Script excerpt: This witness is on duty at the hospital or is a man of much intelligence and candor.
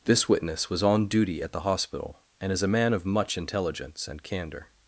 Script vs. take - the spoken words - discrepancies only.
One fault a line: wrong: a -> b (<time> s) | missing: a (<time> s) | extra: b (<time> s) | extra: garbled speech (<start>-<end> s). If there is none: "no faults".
wrong: is -> was (0.7 s)
wrong: or -> and (2.4 s)